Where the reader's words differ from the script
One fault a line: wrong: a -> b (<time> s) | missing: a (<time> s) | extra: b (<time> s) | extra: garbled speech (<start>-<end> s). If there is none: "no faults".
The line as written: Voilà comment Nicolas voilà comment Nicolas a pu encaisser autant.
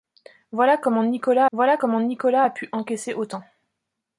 no faults